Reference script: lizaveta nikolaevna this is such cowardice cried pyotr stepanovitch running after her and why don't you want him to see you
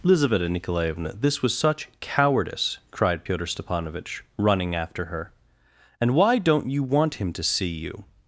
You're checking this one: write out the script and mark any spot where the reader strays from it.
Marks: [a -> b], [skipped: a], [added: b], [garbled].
lizaveta nikolaevna this [is -> was] such cowardice cried pyotr stepanovitch running after her and why don't you want him to see you